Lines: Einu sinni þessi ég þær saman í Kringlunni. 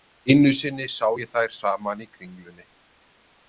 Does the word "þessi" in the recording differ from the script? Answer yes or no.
yes